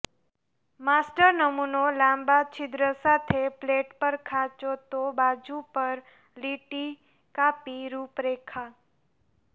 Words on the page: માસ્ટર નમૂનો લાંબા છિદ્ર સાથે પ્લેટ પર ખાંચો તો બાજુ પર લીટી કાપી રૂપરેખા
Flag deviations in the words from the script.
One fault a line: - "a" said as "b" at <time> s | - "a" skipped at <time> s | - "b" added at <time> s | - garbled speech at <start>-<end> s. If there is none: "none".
none